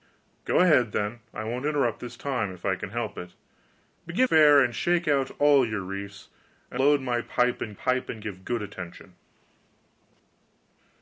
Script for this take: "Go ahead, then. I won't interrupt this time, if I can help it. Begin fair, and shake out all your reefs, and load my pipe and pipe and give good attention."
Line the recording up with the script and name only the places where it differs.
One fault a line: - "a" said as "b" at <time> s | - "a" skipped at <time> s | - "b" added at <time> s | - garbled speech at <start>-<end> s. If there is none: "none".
none